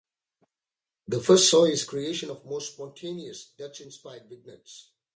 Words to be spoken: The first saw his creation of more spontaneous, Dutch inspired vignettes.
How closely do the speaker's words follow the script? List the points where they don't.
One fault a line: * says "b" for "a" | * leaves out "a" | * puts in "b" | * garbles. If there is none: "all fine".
all fine